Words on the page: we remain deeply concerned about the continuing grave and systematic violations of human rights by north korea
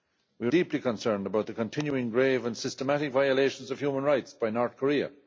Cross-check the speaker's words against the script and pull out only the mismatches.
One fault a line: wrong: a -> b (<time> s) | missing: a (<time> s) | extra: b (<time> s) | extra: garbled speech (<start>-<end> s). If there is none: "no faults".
missing: remain (0.5 s)